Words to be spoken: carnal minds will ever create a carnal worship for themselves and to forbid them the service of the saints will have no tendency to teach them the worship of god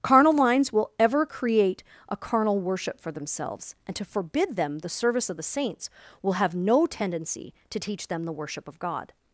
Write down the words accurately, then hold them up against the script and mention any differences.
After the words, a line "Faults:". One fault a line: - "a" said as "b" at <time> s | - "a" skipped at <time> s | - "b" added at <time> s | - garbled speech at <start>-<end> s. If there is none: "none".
carnal minds will ever create a carnal worship for themselves and to forbid them the service of the saints will have no tendency to teach them the worship of god
Faults:
none